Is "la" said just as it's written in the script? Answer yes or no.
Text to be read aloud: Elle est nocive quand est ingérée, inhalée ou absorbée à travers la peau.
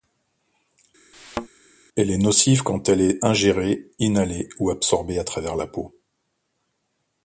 yes